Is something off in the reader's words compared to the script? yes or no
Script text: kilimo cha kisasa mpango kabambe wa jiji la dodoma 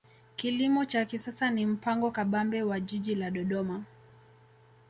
yes